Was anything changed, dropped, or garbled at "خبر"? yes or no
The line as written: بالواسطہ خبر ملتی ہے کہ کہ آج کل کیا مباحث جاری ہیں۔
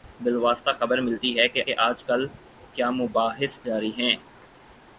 no